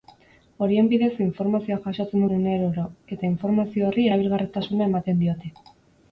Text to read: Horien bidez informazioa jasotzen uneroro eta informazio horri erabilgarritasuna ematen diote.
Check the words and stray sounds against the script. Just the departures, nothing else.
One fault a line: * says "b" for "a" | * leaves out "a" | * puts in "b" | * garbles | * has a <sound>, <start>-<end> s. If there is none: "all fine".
all fine